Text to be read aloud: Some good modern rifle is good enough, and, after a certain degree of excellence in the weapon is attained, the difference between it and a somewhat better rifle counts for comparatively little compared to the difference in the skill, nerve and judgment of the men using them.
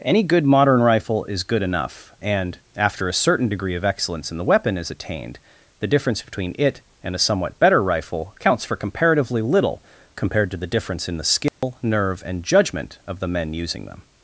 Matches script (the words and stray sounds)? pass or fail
fail